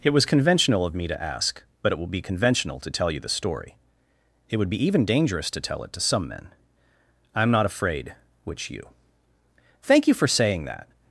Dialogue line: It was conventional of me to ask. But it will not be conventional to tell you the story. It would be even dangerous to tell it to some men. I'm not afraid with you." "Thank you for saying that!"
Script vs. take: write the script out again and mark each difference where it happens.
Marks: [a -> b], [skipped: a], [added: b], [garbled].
It was conventional of me to ask. But it will [skipped: not] be conventional to tell you the story. It would be even dangerous to tell it to some men. I'm not afraid [with -> which] you." "Thank you for saying that!"